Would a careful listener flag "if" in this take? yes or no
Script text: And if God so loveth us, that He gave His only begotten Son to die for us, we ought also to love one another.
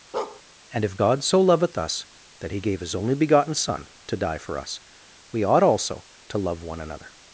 no